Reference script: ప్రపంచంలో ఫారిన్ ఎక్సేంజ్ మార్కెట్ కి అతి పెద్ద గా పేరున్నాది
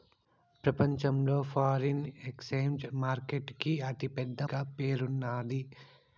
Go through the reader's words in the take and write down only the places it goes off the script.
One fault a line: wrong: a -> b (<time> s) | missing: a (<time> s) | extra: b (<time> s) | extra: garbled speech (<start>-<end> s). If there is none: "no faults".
no faults